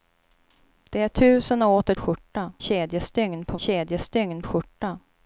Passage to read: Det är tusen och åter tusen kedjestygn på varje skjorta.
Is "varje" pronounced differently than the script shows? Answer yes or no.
yes